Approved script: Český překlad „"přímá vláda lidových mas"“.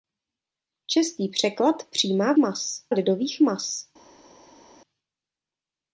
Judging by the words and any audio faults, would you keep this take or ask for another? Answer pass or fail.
fail